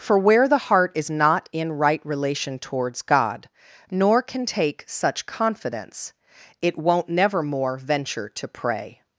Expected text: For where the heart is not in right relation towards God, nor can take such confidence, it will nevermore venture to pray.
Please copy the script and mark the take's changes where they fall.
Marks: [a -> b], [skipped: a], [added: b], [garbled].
For where the heart is not in right relation towards God, nor can take such confidence, it [will -> won't] nevermore venture to pray.